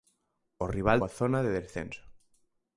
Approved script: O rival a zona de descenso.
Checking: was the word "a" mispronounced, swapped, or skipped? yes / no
no